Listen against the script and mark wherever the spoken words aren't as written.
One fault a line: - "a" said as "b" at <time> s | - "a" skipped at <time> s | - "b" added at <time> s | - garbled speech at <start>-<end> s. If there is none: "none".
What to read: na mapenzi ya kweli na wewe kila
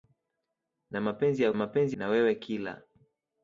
- "kweli" said as "mapenzi" at 1.5 s